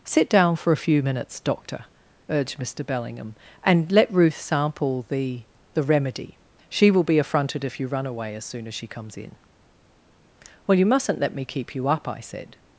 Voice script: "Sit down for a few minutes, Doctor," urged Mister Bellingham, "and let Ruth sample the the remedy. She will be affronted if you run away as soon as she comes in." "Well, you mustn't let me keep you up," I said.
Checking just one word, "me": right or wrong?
right